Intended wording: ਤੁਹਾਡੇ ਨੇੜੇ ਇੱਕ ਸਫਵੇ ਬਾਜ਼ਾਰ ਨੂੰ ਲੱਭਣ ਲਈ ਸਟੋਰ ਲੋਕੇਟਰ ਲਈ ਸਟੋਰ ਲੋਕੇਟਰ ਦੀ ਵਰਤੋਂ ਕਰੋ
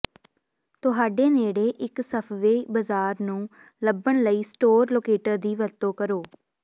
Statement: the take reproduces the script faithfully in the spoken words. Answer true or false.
false